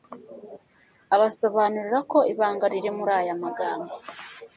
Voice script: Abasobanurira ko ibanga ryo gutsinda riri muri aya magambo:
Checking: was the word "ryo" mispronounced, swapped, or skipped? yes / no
yes